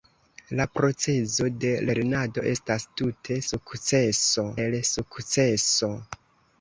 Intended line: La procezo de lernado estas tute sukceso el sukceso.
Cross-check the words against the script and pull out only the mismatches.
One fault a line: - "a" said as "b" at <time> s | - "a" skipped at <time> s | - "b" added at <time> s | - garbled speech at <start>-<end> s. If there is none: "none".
none